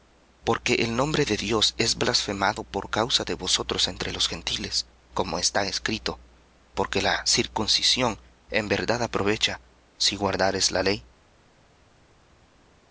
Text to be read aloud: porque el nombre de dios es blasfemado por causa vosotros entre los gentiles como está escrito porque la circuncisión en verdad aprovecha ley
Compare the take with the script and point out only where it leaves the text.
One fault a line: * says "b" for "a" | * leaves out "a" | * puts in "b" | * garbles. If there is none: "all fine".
* puts in "de"
* puts in "si guardares la"